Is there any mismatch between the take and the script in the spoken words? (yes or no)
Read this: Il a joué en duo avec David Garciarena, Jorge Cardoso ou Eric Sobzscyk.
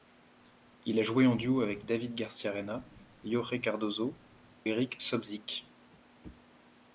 yes